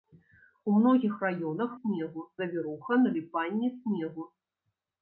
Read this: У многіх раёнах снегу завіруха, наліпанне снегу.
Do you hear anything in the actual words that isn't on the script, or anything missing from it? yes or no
no